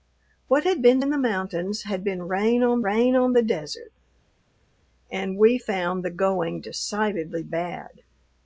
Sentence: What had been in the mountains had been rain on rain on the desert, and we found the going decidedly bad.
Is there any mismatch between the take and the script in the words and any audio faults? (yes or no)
no